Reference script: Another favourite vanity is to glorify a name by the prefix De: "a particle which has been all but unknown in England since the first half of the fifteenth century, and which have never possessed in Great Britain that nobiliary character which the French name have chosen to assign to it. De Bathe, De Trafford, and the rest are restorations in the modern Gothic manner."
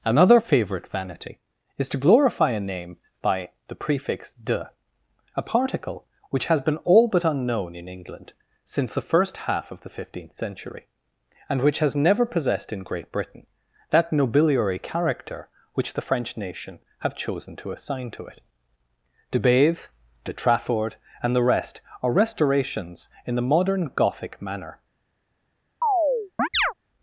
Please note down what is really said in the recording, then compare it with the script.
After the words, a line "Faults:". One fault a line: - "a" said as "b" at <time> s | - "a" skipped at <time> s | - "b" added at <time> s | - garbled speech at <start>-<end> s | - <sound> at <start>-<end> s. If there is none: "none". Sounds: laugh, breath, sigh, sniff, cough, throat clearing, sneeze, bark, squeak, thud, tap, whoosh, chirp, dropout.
Another favourite vanity is to glorify a name by the prefix De: "a particle which has been all but unknown in England since the first half of the fifteenth century, and which has never possessed in Great Britain that nobiliary character which the French nation have chosen to assign to it. De Bathe, De Trafford, and the rest are restorations in the modern Gothic manner."
Faults:
- "have" said as "has" at 11.8 s
- "name" said as "nation" at 16.4 s
- chirp at 25.8-26.7 s